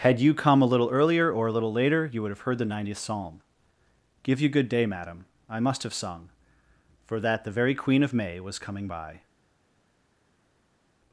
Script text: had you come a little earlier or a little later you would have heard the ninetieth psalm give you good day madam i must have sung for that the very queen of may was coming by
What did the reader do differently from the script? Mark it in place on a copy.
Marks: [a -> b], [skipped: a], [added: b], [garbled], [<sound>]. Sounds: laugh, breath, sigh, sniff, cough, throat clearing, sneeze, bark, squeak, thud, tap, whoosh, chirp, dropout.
had you come a little earlier or a little later you would have heard the ninetieth psalm give you good day madam i must have sung for that the very queen of may was coming by